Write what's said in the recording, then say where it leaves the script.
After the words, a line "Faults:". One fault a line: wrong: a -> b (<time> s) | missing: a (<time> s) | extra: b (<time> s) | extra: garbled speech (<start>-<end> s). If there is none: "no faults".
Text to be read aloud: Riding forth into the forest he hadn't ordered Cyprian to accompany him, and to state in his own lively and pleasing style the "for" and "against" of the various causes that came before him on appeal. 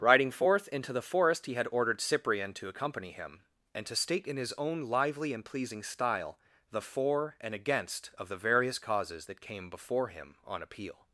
Riding forth into the forest he had ordered Cyprian to accompany him, and to state in his own lively and pleasing style the "for" and "against" of the various causes that came before him on appeal.
Faults:
wrong: hadn't -> had (1.5 s)